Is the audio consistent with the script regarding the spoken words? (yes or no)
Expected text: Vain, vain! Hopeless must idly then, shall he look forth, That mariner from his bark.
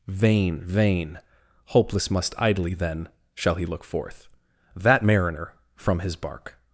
yes